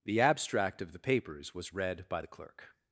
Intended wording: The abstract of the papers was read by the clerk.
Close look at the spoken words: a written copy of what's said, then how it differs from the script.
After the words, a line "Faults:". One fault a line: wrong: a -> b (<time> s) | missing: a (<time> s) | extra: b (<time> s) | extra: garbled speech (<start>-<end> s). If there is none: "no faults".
The abstract of the papers was read by the clerk.
Faults:
no faults